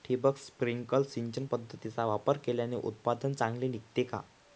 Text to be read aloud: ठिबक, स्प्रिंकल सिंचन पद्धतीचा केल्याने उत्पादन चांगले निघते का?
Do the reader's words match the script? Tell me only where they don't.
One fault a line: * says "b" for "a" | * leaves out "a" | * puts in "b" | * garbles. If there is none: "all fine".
* puts in "वापर"